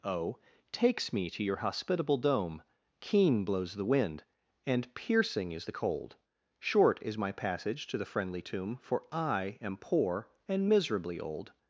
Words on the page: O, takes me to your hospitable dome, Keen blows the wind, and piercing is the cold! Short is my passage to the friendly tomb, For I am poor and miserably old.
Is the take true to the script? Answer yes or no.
yes